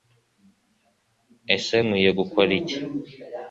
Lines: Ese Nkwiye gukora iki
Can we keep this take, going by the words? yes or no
yes